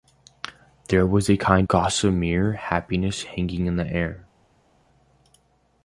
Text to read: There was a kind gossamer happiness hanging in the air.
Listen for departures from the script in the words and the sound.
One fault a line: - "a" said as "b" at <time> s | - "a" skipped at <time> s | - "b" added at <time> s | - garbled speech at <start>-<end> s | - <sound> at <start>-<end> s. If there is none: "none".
none